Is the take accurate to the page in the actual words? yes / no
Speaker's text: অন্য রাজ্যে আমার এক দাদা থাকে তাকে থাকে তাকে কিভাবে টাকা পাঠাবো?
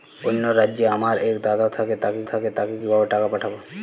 yes